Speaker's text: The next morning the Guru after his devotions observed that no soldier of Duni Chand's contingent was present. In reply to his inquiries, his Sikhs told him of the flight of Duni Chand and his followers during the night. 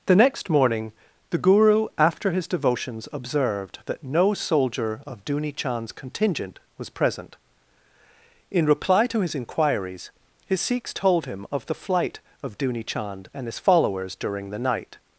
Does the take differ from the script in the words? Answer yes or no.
no